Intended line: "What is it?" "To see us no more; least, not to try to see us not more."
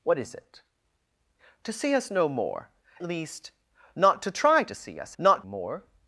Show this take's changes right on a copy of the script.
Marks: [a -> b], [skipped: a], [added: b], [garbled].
"What is it?" "To see us no more; least, not to try to see us not more."